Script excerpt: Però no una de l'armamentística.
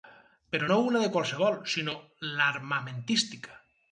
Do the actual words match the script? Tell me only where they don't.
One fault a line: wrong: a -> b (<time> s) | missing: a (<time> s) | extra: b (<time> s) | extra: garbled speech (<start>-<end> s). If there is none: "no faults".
extra: qualsevol sinó (1.2 s)